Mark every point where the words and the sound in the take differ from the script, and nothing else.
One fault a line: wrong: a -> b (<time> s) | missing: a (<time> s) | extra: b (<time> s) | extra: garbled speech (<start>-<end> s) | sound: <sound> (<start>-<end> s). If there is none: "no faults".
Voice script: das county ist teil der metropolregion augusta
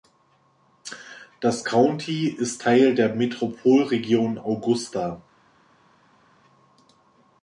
no faults